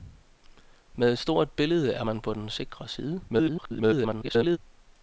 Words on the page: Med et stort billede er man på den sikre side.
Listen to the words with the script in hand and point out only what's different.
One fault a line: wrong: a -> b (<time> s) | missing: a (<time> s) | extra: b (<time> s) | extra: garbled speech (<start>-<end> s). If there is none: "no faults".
extra: garbled speech (3.3-4.6 s)